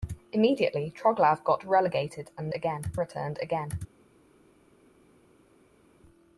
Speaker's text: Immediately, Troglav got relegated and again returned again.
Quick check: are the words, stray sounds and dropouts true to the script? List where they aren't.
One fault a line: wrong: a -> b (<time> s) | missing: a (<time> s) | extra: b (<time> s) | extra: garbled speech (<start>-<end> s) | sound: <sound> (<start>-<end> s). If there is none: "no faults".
no faults